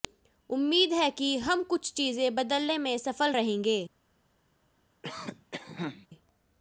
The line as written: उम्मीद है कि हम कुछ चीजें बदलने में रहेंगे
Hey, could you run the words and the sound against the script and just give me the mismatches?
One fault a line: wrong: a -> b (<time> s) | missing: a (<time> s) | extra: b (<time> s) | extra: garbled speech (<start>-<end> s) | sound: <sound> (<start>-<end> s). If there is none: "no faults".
extra: सफल (3.0 s)
sound: cough (5.0-6.1 s)